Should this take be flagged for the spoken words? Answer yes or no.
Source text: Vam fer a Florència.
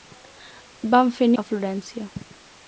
no